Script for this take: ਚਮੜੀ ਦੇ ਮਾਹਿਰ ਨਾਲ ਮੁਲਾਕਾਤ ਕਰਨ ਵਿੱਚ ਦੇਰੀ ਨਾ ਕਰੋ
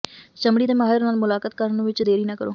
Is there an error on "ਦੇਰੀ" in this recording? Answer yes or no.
no